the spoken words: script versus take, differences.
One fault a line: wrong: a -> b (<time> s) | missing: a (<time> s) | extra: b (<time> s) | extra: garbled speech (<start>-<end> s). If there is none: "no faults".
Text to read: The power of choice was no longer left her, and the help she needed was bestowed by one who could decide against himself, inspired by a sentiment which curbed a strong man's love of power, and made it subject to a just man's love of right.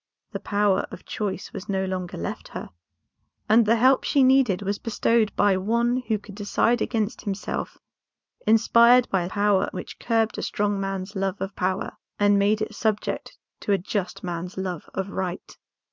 wrong: sentiment -> power (9.2 s)